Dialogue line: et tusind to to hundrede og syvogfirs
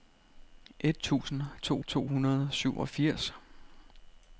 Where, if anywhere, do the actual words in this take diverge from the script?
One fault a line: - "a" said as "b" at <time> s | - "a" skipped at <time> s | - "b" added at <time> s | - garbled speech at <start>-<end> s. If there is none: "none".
none